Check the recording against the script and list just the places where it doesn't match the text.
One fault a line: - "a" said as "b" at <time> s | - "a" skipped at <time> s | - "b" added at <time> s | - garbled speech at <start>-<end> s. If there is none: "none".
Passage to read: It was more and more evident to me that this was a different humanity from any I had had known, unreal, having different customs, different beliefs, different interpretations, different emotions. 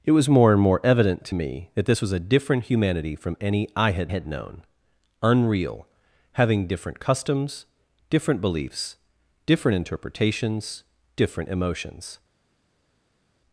none